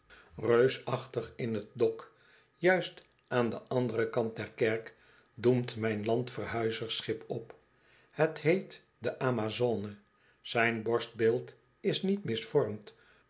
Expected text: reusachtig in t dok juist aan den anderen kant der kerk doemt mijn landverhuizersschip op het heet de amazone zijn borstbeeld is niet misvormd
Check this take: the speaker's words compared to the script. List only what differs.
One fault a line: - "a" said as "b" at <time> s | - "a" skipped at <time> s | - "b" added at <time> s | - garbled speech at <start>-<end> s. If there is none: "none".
none